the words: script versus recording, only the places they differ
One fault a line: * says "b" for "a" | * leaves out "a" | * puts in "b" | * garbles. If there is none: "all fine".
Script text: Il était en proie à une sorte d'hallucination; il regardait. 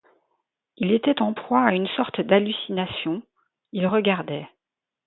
all fine